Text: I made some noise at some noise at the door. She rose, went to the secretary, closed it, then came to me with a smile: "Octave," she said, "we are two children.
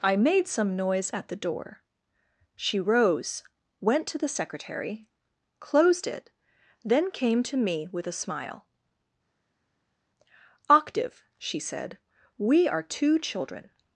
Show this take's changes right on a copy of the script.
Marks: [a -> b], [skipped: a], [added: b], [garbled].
I made some noise at [skipped: some noise at] the door. She rose, went to the secretary, closed it, then came to me with a smile: "Octave," she said, "we are two children.